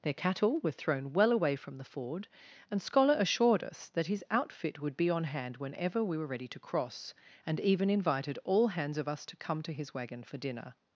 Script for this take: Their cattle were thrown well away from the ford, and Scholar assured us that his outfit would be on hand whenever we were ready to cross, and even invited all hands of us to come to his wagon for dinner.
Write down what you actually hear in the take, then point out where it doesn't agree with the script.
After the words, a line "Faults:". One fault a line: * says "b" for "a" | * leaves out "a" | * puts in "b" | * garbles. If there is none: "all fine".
Their cattle were thrown well away from the ford, and Scholar assured us that his outfit would be on hand whenever we were ready to cross, and even invited all hands of us to come to his wagon for dinner.
Faults:
all fine